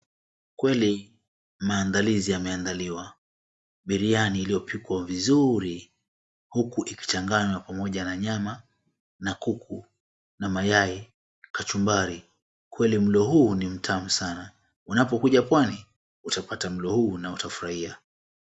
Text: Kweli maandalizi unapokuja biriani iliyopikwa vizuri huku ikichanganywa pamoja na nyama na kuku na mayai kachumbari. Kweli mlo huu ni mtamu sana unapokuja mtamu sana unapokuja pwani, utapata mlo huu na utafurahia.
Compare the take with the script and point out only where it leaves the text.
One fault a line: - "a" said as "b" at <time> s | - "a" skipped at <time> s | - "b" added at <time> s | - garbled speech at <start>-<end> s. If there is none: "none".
- "unapokuja" said as "yameandaliwa" at 2.3 s
- "mtamu sana unapokuja" skipped at 15.4 s